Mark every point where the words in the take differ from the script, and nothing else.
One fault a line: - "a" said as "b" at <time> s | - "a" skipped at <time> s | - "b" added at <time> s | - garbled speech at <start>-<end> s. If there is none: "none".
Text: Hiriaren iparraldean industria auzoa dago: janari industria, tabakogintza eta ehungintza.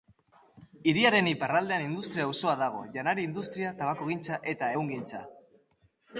none